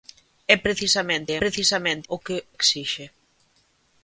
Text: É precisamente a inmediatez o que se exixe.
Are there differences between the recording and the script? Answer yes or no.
yes